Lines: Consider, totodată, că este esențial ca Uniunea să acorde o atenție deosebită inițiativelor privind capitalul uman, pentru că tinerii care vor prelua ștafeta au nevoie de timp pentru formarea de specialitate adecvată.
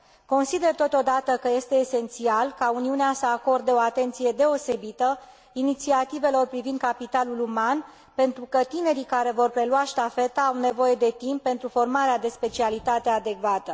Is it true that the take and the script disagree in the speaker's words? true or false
false